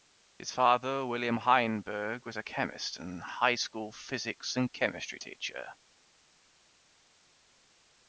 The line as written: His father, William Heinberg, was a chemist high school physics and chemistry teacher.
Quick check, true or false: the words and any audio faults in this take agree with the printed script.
false